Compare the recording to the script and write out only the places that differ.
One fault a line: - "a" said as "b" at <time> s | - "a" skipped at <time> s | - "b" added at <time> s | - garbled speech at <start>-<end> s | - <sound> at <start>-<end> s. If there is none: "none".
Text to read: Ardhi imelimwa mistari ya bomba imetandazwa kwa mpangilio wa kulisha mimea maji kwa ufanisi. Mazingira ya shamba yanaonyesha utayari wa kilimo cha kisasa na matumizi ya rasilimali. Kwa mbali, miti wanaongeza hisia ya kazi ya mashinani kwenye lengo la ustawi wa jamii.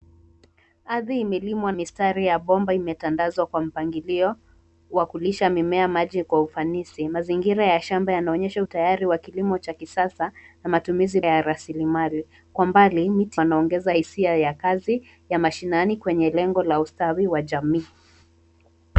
none